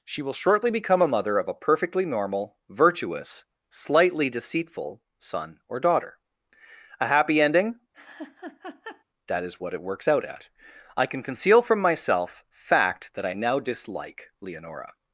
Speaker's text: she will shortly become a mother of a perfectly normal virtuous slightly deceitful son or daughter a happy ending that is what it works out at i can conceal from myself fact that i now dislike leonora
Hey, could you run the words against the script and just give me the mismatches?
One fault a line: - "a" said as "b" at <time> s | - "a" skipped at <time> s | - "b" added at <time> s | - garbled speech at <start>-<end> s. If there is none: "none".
none